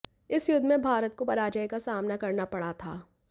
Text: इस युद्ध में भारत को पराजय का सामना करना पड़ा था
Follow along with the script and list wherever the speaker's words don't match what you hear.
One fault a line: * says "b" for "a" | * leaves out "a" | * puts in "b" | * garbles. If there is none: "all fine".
all fine